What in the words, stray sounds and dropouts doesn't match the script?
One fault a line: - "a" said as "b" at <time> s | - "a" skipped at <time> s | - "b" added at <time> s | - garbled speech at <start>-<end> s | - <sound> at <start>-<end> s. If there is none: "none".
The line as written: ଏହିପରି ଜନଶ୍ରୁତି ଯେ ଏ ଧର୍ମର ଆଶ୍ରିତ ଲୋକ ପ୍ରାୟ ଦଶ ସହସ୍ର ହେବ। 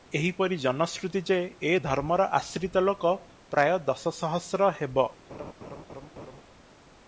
- laugh at 5.3-6.4 s